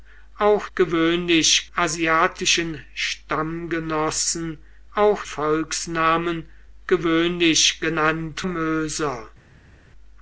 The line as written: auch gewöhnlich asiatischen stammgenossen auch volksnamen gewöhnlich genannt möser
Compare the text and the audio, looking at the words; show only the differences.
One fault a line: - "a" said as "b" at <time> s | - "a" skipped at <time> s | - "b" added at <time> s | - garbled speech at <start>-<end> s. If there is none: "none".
none